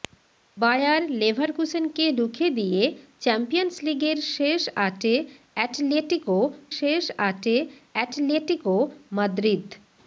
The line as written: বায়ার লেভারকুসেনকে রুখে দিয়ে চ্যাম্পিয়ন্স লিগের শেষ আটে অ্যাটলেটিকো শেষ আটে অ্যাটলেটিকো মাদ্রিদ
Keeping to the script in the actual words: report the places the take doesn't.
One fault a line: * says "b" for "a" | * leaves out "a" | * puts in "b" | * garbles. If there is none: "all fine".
all fine